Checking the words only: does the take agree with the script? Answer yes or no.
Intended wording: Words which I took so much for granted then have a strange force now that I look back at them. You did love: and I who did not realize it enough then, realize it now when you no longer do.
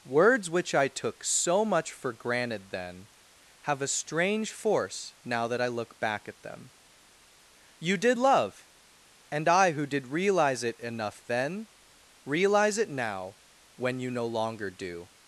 no